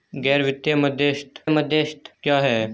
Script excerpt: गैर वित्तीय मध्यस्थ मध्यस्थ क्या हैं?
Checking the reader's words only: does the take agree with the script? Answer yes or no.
yes